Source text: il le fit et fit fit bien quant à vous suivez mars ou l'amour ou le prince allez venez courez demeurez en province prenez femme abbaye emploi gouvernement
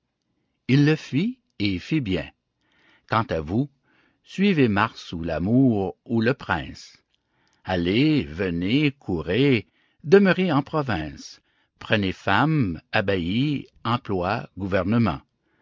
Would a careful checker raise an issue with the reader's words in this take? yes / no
yes